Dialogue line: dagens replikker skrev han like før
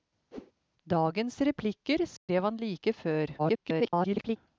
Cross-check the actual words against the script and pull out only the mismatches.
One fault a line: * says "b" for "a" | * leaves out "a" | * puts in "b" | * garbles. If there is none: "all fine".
* garbles